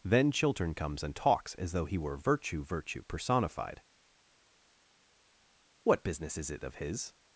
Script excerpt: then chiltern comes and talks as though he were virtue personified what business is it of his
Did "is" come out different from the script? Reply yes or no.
no